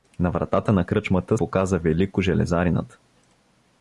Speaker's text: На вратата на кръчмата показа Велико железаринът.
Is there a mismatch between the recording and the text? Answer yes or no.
no